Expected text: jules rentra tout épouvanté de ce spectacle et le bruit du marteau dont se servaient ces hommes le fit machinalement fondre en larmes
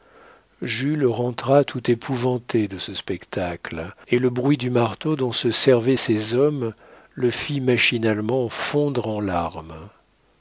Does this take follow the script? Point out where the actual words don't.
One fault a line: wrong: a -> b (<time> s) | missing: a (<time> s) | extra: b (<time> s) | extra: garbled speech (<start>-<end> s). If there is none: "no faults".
no faults